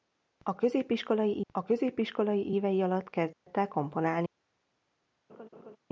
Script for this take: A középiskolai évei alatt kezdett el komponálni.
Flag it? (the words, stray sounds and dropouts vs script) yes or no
yes